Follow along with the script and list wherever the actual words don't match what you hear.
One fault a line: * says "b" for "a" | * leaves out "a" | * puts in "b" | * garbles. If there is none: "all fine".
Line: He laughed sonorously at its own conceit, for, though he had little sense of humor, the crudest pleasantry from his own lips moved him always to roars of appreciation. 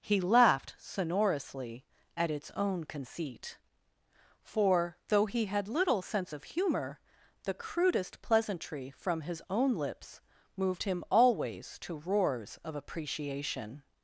all fine